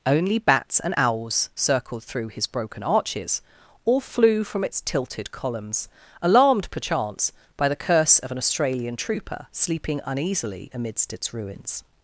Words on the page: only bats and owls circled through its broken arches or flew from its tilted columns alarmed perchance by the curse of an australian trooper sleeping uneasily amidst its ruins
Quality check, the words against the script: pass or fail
fail